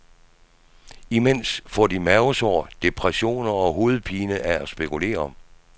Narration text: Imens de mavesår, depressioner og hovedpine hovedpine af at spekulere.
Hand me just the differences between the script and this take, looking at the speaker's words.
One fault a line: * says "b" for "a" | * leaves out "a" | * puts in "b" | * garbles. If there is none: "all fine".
* puts in "får"
* leaves out "hovedpine"